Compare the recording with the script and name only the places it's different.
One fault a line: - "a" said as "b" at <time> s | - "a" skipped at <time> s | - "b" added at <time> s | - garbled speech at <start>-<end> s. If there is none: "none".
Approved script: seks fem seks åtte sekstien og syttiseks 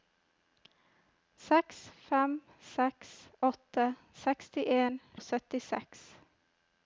none